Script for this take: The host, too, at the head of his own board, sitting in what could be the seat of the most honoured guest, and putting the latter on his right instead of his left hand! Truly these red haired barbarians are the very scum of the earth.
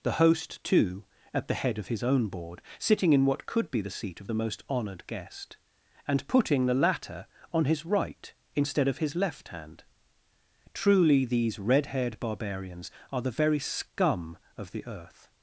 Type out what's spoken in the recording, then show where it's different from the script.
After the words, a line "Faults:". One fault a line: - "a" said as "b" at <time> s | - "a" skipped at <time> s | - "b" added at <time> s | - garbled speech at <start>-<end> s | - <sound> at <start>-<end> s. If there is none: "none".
The host, too, at the head of his own board, sitting in what could be the seat of the most honoured guest, and putting the latter on his right instead of his left hand! Truly these red haired barbarians are the very scum of the earth.
Faults:
none